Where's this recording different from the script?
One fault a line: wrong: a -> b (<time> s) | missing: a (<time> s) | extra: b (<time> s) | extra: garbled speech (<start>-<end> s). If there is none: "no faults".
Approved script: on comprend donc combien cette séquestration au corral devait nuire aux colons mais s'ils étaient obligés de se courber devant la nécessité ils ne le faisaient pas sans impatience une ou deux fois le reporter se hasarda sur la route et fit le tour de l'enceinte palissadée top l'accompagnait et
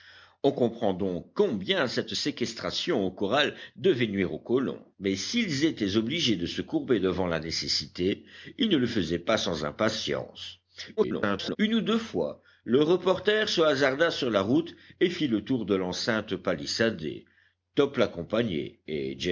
extra: garbled speech (11.0-11.6 s)